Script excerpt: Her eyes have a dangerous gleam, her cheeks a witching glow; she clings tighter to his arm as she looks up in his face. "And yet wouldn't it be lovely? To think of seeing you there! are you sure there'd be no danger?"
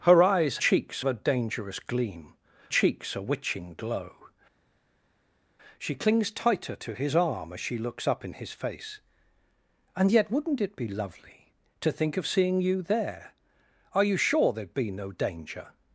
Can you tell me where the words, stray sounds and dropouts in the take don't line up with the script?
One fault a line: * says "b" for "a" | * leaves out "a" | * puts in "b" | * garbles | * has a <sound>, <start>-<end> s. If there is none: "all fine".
* says "cheeks" for "have"
* leaves out "her"